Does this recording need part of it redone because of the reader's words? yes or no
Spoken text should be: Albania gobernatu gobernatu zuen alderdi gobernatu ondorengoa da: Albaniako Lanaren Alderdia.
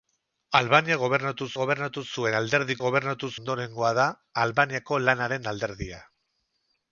no